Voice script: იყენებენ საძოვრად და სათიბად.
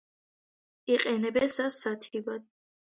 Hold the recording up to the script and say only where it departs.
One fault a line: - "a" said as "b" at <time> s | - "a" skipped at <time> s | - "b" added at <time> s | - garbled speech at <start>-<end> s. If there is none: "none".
- "საძოვრად" skipped at 1.5 s